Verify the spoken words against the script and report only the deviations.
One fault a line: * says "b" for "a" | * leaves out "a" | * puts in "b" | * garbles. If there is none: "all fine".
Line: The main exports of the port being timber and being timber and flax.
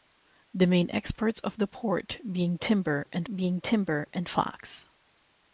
all fine